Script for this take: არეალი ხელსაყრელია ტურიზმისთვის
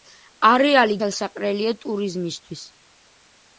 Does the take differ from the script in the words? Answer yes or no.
no